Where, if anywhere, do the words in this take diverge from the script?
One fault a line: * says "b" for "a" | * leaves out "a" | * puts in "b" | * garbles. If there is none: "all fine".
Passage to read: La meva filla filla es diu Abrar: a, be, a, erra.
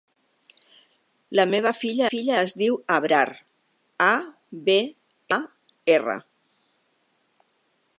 all fine